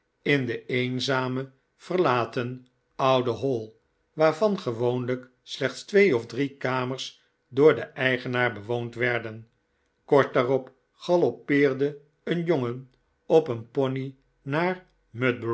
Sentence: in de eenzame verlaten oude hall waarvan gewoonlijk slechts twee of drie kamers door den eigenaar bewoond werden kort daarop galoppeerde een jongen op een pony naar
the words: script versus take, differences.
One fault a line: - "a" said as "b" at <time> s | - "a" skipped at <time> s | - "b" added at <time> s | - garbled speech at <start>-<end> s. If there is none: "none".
none